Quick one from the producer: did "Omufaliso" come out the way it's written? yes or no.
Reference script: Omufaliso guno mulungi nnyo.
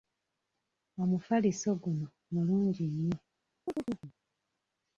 yes